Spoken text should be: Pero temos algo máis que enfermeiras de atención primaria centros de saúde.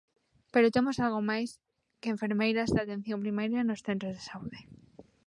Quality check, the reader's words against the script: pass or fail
fail